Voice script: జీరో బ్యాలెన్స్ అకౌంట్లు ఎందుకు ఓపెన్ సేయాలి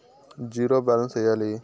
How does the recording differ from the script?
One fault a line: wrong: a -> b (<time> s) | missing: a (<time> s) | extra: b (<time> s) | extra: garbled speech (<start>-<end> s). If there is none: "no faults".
missing: అకౌంట్లు ఎందుకు ఓపెన్ (1.2 s)